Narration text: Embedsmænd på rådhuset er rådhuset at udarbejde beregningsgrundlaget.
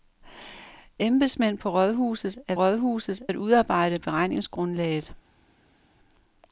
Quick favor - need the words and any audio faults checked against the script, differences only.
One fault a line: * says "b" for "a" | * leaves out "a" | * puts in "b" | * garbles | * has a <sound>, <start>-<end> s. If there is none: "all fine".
all fine